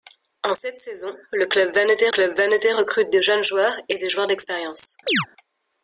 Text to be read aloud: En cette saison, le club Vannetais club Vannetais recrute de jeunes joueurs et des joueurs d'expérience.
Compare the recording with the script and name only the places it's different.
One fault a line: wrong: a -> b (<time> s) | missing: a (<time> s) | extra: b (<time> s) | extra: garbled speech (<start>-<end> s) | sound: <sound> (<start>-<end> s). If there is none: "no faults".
sound: chirp (5.1-5.3 s)